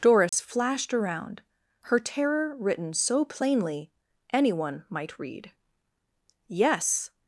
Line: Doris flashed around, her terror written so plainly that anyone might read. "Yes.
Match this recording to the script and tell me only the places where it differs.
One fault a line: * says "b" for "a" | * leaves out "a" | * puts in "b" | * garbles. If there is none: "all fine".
* leaves out "that"